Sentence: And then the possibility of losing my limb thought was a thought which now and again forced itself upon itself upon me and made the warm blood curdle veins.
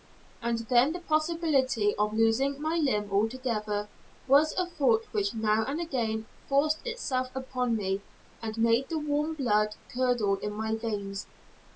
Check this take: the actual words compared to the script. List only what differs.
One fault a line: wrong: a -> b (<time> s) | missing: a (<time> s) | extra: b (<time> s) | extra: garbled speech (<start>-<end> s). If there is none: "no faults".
wrong: thought -> altogether (3.1 s)
missing: itself upon (7.8 s)
extra: in my (10.4 s)